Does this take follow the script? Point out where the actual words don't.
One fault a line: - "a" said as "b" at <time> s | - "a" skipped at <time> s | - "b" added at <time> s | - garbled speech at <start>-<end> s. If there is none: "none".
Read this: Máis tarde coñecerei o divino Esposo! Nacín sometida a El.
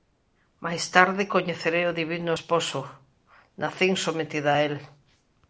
none